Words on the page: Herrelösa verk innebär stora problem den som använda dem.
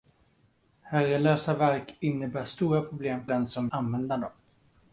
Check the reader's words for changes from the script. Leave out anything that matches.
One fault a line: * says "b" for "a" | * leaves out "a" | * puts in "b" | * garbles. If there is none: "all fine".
all fine